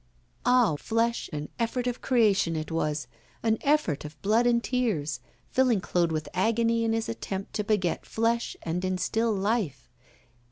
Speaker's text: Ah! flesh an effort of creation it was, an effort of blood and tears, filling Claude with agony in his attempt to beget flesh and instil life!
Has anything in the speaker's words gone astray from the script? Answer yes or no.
no